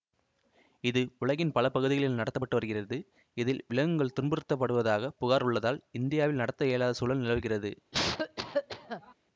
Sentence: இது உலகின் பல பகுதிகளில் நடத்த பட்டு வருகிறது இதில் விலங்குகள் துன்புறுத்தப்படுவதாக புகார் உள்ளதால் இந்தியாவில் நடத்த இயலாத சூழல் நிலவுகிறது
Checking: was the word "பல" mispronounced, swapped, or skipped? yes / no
no